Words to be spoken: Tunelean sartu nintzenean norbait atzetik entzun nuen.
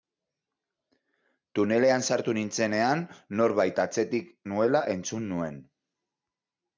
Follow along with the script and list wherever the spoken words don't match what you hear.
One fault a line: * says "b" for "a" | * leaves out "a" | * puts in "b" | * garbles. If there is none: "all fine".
* puts in "nuela"